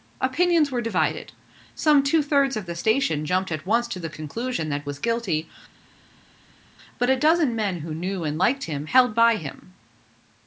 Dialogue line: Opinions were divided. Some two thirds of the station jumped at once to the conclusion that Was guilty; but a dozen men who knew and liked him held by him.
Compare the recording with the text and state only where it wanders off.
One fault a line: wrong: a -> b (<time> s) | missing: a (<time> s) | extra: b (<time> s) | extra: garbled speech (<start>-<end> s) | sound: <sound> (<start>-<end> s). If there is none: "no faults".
no faults